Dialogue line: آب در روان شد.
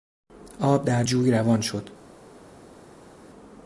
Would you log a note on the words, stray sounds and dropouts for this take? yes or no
yes